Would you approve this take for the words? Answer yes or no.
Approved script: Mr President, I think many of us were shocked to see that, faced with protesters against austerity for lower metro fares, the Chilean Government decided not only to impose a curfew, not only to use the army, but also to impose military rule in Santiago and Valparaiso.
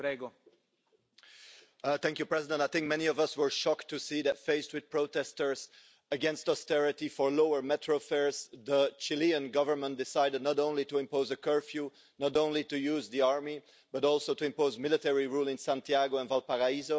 yes